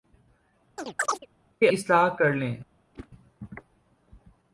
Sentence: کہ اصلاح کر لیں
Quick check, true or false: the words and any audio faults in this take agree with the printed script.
false